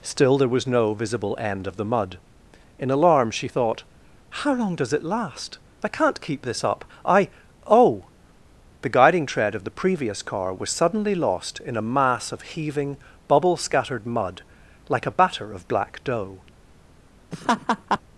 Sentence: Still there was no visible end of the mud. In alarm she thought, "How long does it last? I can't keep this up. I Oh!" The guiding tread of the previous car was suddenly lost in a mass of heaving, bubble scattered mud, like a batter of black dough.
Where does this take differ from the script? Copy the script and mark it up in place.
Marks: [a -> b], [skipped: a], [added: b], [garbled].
Still there was no visible end of the mud. In alarm she thought, "How long does it last? I can't keep this up. I Oh!" The guiding tread of the previous car was suddenly lost in a mass of heaving, bubble scattered mud, like a batter of black dough.